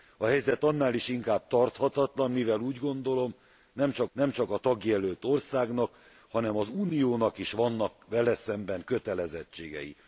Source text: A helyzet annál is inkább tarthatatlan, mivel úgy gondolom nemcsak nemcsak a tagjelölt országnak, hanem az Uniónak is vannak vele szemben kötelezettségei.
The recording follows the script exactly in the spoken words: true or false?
true